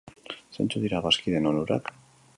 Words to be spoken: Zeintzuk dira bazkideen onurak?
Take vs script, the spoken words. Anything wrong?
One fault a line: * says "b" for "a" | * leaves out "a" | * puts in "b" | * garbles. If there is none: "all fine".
all fine